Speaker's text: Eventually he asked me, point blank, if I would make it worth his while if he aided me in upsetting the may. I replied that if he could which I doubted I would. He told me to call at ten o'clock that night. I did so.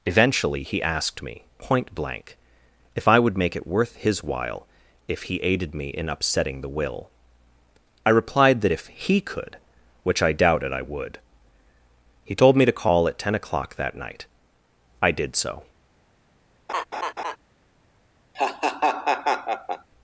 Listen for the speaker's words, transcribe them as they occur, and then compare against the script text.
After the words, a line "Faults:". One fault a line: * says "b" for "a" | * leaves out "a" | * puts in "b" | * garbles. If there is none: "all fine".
Eventually he asked me, point blank, if I would make it worth his while if he aided me in upsetting the will. I replied that if he could which I doubted I would. He told me to call at ten o'clock that night. I did so.
Faults:
* says "will" for "may"